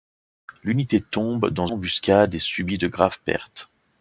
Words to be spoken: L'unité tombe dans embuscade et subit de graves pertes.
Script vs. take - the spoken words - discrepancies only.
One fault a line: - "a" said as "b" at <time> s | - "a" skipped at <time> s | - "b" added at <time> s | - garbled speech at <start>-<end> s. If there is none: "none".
none